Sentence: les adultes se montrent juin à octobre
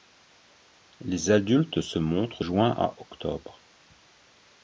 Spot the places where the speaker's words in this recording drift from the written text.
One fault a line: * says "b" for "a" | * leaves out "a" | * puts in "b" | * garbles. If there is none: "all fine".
all fine